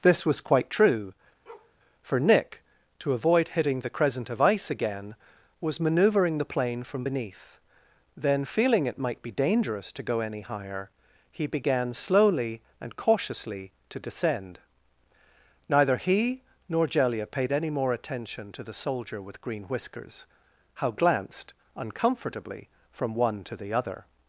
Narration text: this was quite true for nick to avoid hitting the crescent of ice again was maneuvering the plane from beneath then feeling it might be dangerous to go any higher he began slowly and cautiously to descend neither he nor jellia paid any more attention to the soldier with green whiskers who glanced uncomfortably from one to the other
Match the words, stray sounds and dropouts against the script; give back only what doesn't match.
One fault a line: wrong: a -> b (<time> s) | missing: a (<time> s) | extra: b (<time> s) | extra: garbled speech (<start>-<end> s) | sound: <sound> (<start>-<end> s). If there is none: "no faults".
sound: bark (1.5-1.8 s)
wrong: who -> how (20.7 s)